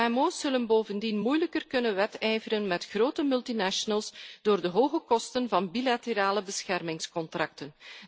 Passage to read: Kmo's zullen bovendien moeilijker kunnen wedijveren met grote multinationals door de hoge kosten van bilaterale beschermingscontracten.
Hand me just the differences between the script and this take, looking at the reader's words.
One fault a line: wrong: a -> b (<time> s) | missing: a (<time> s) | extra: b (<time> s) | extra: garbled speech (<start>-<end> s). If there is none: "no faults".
no faults